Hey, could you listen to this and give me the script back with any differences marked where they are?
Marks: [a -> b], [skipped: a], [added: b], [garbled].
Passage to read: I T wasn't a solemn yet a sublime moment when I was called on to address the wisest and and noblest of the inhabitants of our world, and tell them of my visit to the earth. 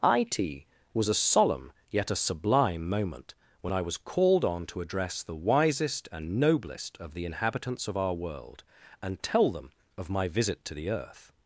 I T [wasn't -> was] a solemn yet a sublime moment when I was called on to address the wisest and [skipped: and] noblest of the inhabitants of our world, and tell them of my visit to the earth.